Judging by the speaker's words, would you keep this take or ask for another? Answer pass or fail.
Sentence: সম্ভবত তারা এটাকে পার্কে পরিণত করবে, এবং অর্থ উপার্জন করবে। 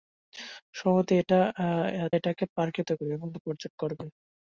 fail